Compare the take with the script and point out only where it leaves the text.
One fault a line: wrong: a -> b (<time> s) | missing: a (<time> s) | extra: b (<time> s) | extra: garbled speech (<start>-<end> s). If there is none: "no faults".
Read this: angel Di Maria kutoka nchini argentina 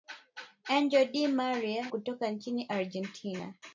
no faults